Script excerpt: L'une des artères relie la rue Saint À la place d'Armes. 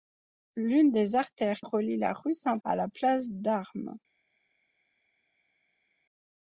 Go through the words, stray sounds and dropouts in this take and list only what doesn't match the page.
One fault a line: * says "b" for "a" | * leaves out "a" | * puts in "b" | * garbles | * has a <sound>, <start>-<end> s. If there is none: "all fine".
all fine